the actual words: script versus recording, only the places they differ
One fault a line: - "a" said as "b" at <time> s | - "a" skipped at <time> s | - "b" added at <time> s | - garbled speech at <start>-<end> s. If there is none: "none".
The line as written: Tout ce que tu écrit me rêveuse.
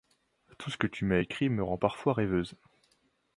- "m'as" added at 1.1 s
- "rend parfois" added at 1.6 s